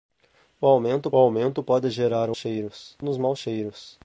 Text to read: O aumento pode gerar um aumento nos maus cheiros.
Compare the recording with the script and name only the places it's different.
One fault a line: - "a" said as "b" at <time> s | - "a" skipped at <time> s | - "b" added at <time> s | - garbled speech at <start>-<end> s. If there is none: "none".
- "aumento" added at 1.2 s
- "aumento" said as "cheiros" at 2.4 s